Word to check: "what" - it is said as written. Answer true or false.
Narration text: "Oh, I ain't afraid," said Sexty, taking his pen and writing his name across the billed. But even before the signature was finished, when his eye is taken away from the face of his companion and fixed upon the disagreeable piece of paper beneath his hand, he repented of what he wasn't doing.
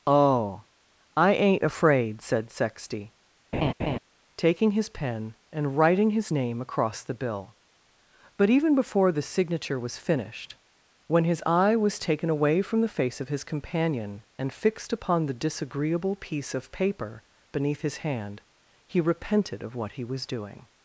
true